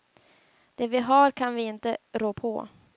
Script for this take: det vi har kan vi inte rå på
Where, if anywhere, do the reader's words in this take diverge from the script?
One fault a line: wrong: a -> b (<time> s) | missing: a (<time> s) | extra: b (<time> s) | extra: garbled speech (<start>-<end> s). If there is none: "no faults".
no faults